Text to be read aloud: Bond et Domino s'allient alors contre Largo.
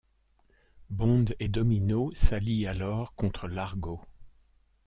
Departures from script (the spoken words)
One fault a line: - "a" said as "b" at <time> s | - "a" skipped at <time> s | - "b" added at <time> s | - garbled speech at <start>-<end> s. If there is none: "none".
none